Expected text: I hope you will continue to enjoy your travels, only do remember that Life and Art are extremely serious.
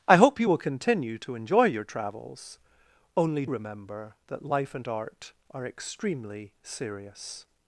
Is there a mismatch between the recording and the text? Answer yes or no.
yes